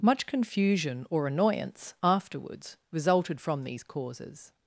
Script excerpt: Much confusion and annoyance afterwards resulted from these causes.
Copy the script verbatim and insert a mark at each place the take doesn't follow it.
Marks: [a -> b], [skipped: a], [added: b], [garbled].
Much confusion [and -> or] annoyance afterwards resulted from these causes.